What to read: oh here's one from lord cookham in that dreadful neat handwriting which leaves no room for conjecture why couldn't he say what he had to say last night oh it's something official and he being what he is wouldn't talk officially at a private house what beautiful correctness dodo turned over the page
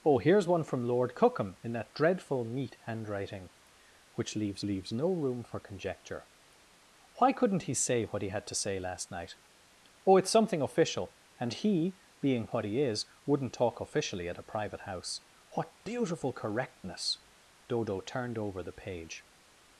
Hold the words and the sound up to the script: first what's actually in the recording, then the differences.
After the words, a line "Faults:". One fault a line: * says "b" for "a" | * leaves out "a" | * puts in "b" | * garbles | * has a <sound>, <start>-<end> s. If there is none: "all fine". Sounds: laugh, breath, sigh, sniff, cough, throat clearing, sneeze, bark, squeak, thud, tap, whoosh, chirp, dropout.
oh here's one from lord cookham in that dreadful neat handwriting which leaves leaves no room for conjecture why couldn't he say what he had to say last night oh it's something official and he being what he is wouldn't talk officially at a private house what beautiful correctness dodo turned over the page
Faults:
* puts in "leaves"